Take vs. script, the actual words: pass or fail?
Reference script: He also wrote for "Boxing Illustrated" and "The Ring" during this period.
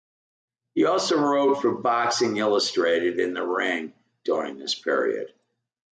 pass